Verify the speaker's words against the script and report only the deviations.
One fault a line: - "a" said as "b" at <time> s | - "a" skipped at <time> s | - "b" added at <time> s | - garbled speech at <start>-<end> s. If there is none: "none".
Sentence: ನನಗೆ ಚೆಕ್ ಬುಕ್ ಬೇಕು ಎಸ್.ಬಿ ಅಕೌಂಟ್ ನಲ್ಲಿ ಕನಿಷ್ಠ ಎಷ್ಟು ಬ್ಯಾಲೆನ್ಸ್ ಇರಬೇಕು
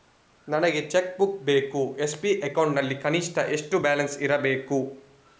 none